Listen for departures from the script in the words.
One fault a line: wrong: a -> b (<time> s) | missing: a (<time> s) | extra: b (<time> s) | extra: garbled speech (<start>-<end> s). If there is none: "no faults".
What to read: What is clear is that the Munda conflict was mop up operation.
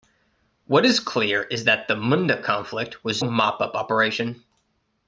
no faults